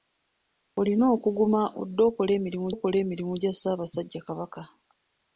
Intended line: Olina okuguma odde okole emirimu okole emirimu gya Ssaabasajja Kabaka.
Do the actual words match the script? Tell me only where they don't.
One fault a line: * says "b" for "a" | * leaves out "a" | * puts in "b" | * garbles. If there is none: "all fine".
all fine